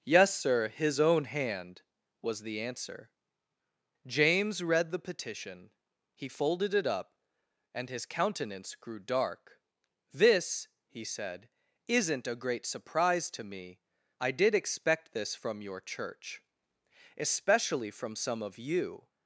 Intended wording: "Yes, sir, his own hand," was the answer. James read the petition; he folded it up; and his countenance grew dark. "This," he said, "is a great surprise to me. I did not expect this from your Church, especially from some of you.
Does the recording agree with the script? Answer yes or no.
no